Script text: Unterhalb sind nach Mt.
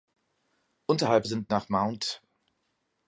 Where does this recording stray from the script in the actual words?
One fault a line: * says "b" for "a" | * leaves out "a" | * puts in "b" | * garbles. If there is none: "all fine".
all fine